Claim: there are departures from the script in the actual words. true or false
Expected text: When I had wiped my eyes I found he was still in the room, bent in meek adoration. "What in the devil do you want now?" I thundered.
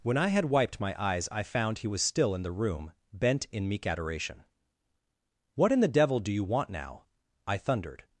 false